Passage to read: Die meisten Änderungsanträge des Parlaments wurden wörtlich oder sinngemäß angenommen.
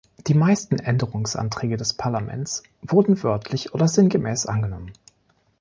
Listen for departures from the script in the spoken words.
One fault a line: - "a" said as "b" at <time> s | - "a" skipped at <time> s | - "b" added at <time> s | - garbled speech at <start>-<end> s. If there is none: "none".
none